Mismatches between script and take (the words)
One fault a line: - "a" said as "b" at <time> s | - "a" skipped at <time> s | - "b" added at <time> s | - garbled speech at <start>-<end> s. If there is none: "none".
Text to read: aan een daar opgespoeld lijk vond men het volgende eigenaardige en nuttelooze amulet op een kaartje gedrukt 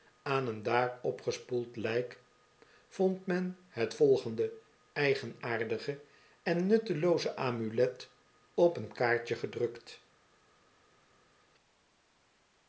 none